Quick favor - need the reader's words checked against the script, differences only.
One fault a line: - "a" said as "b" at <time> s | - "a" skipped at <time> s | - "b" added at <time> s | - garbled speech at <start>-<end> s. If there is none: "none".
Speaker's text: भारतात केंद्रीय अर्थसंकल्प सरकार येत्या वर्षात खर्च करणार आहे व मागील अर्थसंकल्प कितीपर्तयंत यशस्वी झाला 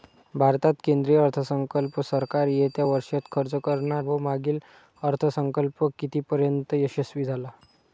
- "आहे" skipped at 4.0 s